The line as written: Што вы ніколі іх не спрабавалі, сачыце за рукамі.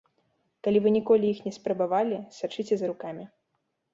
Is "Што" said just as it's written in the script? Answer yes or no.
no